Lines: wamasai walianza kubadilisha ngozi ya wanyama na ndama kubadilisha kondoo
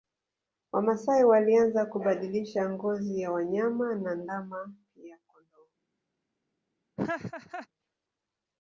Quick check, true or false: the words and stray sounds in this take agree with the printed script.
false